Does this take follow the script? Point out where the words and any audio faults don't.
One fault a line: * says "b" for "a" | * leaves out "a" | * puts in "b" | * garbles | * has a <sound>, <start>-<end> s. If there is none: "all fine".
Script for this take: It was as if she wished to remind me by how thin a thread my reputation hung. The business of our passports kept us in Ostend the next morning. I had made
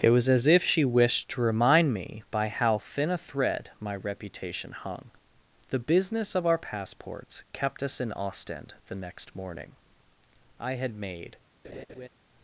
* has a laugh, 11.6-12.1 s